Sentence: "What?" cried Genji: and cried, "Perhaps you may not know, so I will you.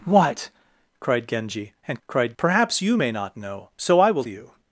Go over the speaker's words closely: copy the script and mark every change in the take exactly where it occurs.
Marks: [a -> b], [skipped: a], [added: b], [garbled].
"What?" cried Genji: and cried, "Perhaps you may not know, so I will you.